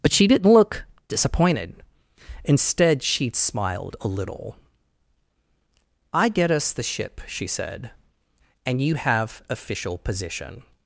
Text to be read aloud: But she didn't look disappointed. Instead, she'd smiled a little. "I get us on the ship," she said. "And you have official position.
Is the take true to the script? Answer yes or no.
no